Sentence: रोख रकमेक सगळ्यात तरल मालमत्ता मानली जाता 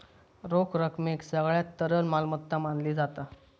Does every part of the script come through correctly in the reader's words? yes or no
yes